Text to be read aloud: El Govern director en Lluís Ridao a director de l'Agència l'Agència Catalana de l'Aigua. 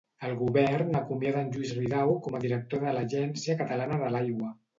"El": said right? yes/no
yes